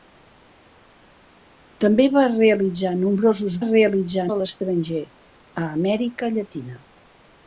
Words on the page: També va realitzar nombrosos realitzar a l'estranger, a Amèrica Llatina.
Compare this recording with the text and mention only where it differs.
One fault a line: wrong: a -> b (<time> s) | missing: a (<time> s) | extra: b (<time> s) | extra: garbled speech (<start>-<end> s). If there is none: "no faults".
no faults